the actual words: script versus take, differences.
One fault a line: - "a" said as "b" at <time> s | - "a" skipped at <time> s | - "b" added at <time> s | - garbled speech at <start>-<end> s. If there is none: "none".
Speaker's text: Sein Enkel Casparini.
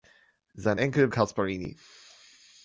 none